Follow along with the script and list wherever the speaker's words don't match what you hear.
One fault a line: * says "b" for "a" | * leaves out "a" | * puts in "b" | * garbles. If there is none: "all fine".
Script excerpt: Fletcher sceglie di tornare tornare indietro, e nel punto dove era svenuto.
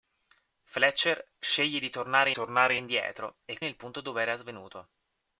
all fine